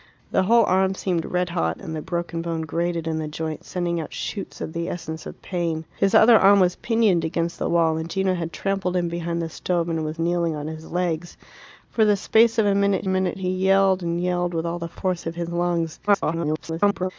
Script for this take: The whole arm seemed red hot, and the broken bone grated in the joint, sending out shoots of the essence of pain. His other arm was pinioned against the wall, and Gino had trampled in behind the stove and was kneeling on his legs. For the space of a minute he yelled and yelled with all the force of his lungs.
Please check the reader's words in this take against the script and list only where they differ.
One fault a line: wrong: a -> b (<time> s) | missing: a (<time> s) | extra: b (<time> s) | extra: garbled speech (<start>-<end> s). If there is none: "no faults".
extra: minute (13.1 s)
extra: garbled speech (16.1-17.1 s)